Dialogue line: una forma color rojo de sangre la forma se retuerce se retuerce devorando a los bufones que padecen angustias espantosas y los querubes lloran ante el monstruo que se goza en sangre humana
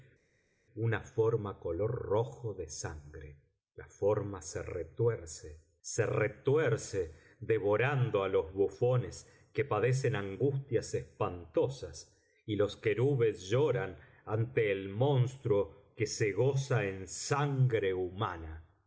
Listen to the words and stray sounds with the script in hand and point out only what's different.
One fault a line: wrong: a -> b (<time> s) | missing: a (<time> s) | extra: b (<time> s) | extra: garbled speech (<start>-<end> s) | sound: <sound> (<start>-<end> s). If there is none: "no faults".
no faults